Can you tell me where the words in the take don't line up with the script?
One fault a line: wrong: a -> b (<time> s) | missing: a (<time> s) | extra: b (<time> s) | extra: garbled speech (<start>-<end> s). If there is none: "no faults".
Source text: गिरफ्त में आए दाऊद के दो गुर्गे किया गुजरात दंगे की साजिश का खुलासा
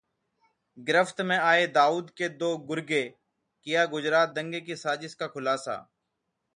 no faults